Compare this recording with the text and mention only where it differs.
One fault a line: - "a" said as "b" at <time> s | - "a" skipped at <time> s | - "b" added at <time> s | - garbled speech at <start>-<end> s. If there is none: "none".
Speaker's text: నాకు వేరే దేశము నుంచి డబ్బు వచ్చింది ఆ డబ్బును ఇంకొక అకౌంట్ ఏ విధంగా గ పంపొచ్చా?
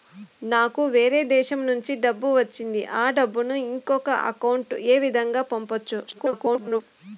- garbled speech at 6.1-6.8 s